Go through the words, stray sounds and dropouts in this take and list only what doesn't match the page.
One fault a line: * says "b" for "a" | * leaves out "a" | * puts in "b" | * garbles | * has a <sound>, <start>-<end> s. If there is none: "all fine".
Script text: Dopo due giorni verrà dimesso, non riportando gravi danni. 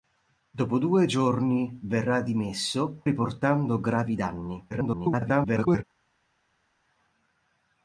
* leaves out "non"
* garbles